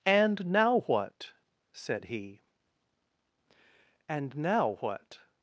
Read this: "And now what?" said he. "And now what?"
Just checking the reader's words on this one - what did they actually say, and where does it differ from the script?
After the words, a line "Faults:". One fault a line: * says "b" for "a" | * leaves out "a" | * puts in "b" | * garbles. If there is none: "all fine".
"And now what?" said he. "And now what?"
Faults:
all fine